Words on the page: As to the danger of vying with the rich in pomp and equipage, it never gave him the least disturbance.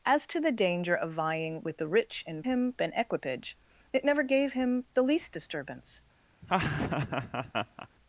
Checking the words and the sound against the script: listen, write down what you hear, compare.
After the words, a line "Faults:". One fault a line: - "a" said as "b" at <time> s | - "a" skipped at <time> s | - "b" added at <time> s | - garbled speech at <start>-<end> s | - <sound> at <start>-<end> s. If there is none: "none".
As to the danger of vying with the rich in him and equipage, it never gave him the least disturbance.
Faults:
- "pomp" said as "him" at 2.4 s
- laugh at 6.4-7.9 s